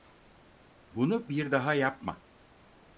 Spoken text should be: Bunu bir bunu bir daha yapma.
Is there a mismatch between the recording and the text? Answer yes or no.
yes